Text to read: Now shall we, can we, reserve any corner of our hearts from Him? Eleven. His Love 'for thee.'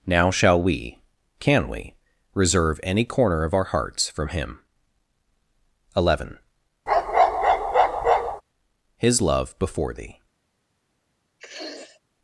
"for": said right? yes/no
no